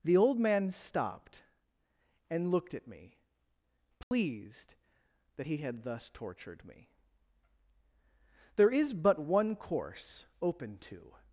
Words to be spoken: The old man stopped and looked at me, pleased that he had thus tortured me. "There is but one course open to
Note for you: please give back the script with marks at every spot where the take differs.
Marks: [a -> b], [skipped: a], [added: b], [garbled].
The old man stopped and looked at me, pleased that he had thus tortured me. "There is but one course open to